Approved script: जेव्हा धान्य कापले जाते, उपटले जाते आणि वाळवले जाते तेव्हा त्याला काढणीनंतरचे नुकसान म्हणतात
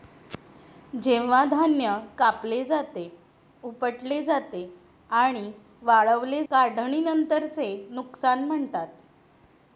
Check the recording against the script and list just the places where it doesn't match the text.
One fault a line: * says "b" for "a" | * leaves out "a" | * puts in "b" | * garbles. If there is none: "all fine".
* leaves out "जाते तेव्हा त्याला"